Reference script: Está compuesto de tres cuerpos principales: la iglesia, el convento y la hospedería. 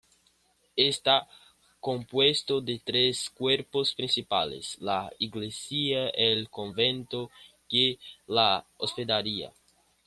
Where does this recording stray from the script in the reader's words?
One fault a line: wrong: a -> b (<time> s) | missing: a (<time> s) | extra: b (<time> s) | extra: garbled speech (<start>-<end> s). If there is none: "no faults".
no faults